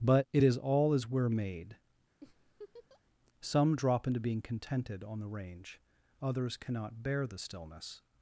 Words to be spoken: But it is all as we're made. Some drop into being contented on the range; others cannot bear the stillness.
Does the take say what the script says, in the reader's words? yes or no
yes